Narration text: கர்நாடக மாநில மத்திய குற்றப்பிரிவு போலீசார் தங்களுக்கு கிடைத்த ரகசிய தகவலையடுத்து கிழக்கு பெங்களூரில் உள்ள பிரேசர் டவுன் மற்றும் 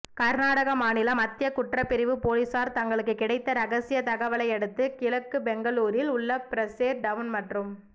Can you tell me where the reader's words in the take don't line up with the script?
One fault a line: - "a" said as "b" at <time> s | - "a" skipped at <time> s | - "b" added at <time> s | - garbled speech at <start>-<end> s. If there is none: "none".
none